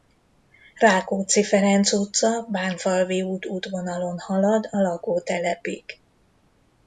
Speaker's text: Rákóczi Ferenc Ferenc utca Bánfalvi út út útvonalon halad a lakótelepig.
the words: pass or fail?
fail